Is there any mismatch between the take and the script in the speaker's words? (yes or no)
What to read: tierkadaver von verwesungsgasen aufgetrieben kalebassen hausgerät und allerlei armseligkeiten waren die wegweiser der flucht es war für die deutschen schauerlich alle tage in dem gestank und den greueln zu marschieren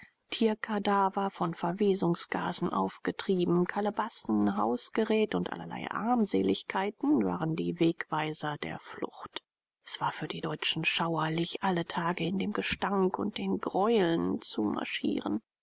no